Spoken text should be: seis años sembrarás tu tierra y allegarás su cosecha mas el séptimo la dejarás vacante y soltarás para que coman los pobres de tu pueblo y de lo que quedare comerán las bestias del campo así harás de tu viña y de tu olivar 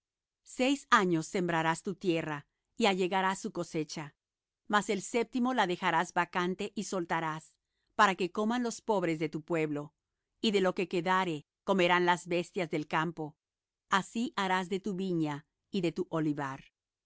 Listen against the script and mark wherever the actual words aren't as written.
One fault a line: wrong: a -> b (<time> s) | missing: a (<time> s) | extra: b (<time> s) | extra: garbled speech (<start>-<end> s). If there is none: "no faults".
no faults